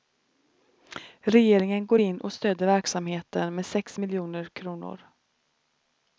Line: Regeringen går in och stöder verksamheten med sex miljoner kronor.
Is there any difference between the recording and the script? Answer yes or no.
no